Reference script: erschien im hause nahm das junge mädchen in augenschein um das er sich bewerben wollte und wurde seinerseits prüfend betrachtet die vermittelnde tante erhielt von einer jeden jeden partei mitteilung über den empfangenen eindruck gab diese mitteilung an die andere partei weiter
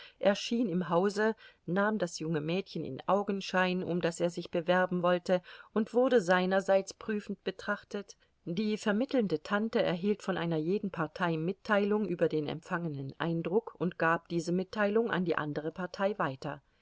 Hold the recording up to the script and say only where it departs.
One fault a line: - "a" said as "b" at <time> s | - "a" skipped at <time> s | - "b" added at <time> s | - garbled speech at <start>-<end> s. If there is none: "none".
- "jeden" skipped at 10.9 s
- "und" added at 13.8 s